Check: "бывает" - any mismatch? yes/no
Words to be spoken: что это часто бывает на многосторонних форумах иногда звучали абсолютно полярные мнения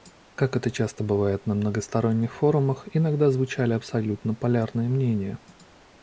no